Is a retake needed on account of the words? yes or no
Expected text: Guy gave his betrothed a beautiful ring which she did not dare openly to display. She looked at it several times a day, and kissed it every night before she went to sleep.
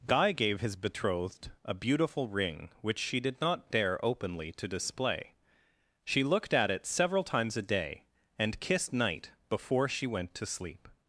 yes